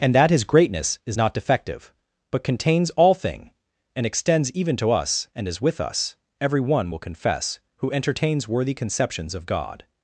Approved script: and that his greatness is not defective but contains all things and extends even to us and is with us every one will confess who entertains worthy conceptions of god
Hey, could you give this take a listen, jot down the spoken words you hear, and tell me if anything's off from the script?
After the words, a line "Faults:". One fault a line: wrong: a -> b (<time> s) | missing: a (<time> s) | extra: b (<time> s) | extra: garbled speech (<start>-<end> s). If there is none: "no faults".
and that his greatness is not defective but contains all thing and extends even to us and is with us every one will confess who entertains worthy conceptions of god
Faults:
wrong: things -> thing (3.1 s)